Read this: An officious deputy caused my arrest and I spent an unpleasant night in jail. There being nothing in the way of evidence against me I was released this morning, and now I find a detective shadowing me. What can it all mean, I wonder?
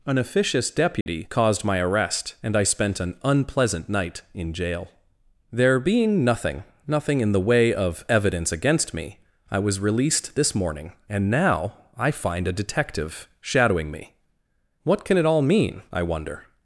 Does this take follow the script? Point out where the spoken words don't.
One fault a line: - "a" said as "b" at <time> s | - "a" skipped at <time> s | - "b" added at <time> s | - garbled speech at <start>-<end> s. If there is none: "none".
- "nothing" added at 6.9 s